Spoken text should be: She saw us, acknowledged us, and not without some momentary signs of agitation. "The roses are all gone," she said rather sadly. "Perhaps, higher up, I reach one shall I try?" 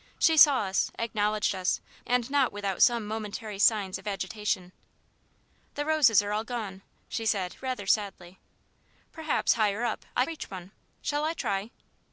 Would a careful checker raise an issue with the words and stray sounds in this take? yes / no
no